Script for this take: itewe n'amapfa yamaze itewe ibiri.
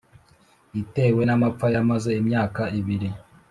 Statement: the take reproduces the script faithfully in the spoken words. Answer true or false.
false